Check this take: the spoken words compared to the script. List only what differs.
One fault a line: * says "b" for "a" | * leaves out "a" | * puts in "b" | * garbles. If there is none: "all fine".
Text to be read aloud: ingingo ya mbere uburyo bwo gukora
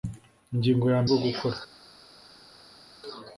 * leaves out "mbere uburyo"